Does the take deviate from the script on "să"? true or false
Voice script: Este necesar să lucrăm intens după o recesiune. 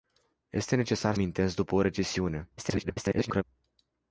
true